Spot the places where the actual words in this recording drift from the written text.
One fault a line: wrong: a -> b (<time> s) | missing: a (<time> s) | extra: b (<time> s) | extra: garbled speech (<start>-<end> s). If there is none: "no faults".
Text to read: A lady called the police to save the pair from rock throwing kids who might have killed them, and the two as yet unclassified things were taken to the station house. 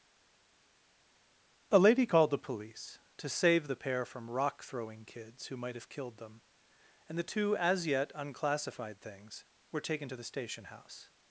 no faults